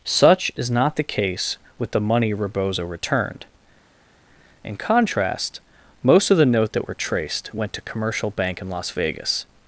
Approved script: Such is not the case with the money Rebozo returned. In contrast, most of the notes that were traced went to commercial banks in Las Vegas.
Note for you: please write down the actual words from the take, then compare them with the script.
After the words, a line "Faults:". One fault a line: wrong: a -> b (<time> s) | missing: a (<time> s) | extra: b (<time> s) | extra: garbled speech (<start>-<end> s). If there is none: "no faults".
Such is not the case with the money Rebozo returned. In contrast, most of the note that were traced went to commercial bank in Las Vegas.
Faults:
wrong: notes -> note (6.5 s)
wrong: banks -> bank (8.3 s)